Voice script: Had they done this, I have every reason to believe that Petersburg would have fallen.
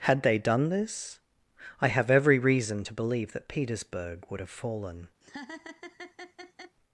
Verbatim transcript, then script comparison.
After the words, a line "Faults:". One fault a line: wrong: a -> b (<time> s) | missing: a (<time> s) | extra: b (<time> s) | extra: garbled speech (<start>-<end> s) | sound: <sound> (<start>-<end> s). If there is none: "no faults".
Had they done this, I have every reason to believe that Petersburg would have fallen.
Faults:
sound: laugh (5.2-6.8 s)